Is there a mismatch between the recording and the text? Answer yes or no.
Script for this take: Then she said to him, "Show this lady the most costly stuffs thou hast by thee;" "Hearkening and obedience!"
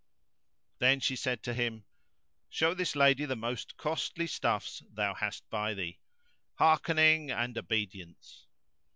no